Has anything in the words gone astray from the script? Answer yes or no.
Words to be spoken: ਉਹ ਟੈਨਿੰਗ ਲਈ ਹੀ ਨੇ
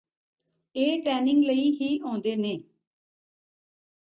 yes